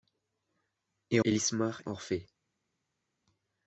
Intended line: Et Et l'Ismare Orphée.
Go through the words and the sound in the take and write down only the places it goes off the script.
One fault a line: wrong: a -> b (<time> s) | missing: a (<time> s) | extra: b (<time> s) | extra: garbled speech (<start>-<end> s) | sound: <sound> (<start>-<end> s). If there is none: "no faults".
no faults